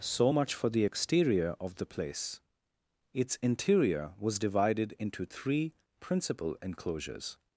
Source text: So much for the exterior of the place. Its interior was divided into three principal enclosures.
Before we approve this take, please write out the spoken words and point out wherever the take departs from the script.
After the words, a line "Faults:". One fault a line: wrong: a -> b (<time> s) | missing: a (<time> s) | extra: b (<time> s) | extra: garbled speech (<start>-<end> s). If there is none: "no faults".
So much for the exterior of the place. Its interior was divided into three principal enclosures.
Faults:
no faults